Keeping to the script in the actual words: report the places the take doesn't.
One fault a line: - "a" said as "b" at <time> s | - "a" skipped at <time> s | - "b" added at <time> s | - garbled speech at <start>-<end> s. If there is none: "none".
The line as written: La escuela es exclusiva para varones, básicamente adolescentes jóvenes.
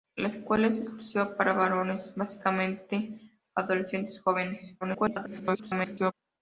- garbled speech at 4.8-6.1 s